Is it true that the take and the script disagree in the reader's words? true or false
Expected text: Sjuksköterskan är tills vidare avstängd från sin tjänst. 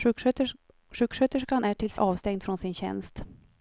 true